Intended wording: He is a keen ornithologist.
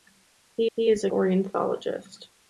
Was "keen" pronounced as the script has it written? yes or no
no